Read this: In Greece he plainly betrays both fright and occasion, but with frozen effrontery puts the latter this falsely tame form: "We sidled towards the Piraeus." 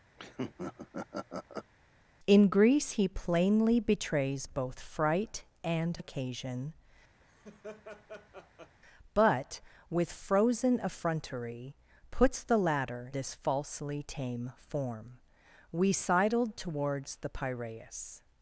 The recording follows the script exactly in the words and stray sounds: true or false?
false